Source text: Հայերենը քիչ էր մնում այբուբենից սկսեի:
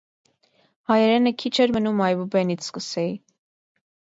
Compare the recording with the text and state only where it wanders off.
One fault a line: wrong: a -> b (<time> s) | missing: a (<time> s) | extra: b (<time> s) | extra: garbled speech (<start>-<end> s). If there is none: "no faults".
no faults